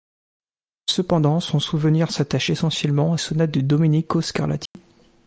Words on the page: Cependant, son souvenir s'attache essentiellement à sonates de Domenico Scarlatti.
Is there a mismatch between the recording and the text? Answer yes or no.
no